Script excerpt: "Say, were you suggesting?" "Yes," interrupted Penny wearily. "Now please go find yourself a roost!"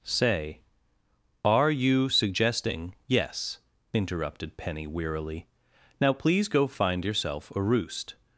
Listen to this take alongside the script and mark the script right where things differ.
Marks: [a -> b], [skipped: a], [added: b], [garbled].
"Say, [were -> are] you suggesting?" "Yes," interrupted Penny wearily. "Now please go find yourself a roost!"